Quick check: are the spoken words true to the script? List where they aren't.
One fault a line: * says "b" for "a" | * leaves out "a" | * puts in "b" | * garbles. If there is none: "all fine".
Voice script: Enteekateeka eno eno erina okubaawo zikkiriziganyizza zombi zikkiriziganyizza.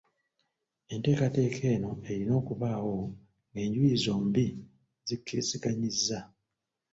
* leaves out "eno"
* says "ng'enjuyi" for "zikkiriziganyizza"